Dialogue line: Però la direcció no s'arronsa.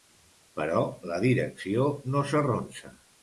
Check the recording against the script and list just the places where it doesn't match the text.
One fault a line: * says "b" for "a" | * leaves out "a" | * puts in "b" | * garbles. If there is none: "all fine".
all fine